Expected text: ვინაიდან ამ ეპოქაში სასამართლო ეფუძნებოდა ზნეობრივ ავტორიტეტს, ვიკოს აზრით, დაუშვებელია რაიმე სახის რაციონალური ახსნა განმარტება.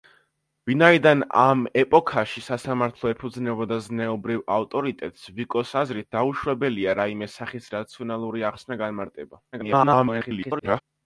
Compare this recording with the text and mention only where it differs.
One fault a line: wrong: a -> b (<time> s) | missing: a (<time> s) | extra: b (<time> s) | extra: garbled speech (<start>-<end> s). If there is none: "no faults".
extra: garbled speech (9.5-10.8 s)